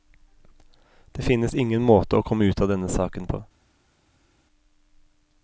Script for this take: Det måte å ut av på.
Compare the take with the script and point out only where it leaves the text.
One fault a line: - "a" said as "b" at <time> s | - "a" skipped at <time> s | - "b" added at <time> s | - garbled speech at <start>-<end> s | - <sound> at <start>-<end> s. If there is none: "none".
- "finnes ingen" added at 1.2 s
- "komme" added at 2.2 s
- "denne saken" added at 2.7 s